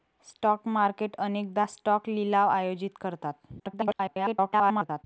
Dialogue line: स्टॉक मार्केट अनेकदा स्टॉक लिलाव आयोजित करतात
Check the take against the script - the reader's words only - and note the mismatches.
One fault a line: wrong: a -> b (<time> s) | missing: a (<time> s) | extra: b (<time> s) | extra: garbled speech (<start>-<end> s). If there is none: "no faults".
extra: garbled speech (3.6-5.0 s)